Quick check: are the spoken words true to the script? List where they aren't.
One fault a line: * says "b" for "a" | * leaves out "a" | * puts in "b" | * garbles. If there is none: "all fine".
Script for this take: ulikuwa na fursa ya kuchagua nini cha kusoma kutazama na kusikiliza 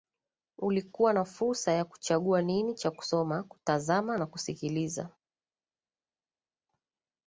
all fine